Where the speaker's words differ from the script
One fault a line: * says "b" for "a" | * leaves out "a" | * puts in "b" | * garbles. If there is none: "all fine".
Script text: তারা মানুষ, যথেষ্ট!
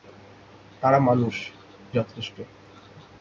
all fine